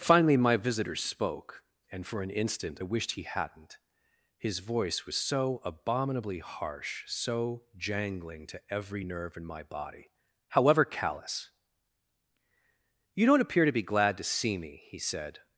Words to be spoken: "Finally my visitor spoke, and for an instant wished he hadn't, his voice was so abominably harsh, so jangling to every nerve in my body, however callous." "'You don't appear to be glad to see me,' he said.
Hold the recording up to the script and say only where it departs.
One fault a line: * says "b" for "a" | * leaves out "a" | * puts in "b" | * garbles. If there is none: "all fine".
all fine